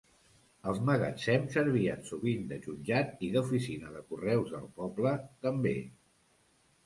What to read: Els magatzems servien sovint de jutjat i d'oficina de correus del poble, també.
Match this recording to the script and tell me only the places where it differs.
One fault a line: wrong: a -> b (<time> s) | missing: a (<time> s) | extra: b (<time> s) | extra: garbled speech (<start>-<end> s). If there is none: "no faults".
no faults